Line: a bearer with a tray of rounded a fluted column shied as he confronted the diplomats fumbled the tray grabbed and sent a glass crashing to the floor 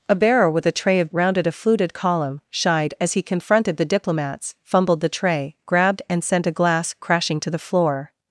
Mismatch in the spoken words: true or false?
false